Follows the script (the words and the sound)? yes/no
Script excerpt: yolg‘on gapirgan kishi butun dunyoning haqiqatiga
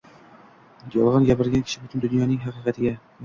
yes